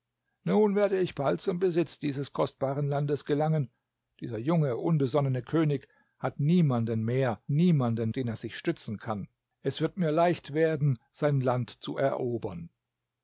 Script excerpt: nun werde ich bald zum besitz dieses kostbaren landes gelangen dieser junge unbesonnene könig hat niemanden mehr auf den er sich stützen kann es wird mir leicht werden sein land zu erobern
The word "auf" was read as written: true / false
false